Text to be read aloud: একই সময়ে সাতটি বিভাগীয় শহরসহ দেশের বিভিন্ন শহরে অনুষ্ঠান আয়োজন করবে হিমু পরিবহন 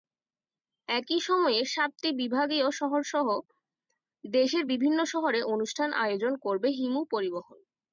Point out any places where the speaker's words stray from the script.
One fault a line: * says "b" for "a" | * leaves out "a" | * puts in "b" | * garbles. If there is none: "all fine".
all fine